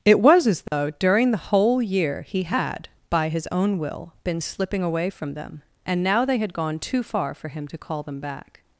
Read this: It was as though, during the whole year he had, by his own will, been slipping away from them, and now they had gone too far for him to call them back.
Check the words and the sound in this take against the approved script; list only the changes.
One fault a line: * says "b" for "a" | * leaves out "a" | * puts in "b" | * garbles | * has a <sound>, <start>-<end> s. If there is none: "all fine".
* has a dropout, 0.7-0.7 s